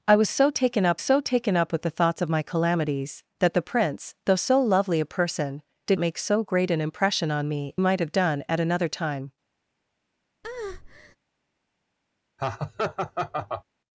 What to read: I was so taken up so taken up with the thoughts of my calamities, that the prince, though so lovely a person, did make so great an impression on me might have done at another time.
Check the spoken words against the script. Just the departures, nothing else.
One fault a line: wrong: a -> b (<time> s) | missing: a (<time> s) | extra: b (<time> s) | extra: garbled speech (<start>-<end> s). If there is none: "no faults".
no faults